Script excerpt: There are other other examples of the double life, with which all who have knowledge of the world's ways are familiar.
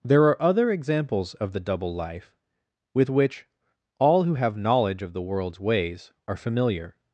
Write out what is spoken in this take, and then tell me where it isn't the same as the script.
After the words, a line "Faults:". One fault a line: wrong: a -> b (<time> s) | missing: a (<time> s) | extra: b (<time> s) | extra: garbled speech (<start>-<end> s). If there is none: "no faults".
There are other examples of the double life, with which all who have knowledge of the world's ways are familiar.
Faults:
missing: other (0.7 s)